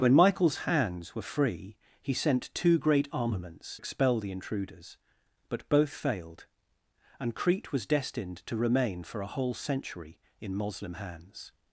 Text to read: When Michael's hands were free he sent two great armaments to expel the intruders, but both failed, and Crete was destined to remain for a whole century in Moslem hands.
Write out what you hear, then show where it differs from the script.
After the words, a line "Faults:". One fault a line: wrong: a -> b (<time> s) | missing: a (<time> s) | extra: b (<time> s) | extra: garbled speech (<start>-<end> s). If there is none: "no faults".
When Michael's hands were free he sent two great armaments expel the intruders, but both failed, and Crete was destined to remain for a whole century in Moslem hands.
Faults:
missing: to (3.8 s)